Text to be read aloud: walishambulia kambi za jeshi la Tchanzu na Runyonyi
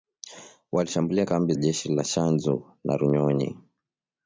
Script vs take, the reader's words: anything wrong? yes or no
yes